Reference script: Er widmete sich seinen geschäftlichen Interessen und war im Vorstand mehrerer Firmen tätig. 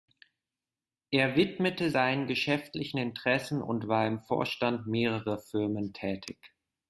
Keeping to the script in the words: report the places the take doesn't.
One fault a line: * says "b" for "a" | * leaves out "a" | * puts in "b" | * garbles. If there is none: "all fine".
* leaves out "sich"